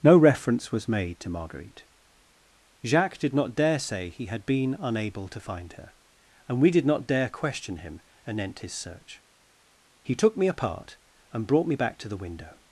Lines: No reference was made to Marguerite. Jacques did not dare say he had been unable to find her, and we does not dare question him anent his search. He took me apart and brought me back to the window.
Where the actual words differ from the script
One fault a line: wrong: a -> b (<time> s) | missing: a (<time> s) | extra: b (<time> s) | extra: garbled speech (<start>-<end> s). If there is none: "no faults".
wrong: does -> did (6.7 s)